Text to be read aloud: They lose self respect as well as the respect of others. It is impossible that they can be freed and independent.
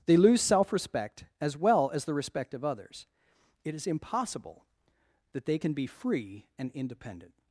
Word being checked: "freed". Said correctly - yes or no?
no